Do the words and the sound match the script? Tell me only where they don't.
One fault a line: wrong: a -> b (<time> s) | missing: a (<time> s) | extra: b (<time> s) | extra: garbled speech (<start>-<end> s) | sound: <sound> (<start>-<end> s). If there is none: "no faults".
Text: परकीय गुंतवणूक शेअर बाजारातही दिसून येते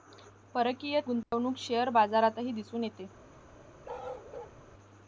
sound: dropout (1.2-1.3 s)
sound: bark (3.8-4.6 s)